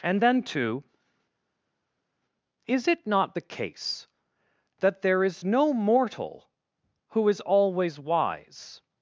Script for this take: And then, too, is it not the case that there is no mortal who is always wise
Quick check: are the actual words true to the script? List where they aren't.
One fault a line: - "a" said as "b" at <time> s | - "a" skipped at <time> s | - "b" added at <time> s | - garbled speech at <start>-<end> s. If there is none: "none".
none